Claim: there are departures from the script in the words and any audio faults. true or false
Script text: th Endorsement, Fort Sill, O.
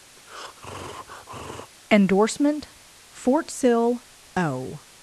true